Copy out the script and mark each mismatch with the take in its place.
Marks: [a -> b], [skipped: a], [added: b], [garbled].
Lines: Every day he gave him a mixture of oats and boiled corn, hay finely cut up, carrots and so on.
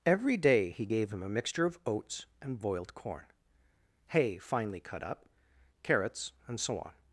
Every day he gave him a mixture of oats and boiled corn, hay finely cut up, carrots and so on.